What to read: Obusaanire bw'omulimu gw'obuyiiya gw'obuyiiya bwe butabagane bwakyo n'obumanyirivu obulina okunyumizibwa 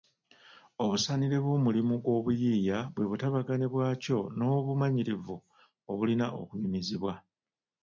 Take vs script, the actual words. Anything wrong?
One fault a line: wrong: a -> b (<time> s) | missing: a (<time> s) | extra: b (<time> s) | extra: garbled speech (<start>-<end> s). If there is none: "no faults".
missing: gw'obuyiiya (2.8 s)